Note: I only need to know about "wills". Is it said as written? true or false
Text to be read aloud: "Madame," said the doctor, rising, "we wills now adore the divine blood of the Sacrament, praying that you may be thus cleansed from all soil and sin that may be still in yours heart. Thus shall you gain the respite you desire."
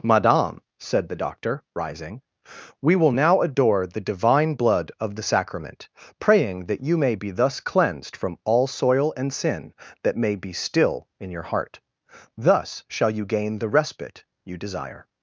false